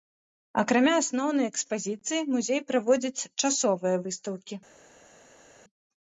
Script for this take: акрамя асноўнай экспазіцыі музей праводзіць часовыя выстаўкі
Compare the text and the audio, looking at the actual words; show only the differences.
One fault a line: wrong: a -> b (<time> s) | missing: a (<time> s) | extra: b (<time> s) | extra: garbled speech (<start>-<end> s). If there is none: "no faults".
no faults